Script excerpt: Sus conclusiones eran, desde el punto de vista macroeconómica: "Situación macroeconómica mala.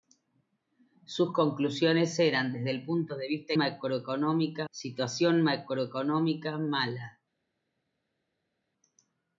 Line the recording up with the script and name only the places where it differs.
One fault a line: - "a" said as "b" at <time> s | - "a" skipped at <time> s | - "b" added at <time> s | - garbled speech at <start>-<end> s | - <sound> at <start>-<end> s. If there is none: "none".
none